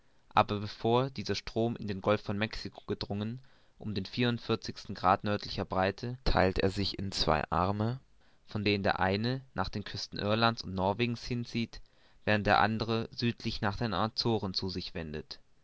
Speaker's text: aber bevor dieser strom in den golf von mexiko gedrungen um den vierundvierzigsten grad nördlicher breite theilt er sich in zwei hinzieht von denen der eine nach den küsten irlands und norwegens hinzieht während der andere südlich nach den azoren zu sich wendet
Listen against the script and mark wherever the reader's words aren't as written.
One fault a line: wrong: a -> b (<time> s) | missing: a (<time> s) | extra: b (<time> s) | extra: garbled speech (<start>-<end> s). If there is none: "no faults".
wrong: hinzieht -> arme (7.5 s)